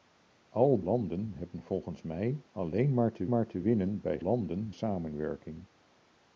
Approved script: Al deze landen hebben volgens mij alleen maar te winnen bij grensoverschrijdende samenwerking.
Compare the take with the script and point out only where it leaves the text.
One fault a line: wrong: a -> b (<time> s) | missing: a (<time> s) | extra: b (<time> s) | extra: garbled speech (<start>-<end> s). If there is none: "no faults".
missing: deze (0.8 s)
extra: maar te (3.3 s)
wrong: grensoverschrijdende -> landen (4.2 s)